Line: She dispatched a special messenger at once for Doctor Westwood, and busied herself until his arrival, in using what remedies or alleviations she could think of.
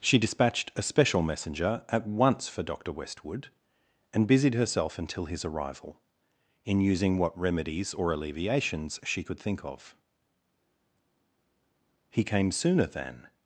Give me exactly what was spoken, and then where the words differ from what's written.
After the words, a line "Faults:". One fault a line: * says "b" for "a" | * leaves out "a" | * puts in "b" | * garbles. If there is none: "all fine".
She dispatched a special messenger at once for Doctor Westwood, and busied herself until his arrival, in using what remedies or alleviations she could think of. He came sooner than
Faults:
* puts in "He came sooner than"